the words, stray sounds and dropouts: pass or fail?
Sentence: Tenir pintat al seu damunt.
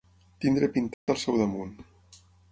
fail